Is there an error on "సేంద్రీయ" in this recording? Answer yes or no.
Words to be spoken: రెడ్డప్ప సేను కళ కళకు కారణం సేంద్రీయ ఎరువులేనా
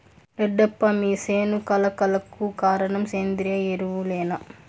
no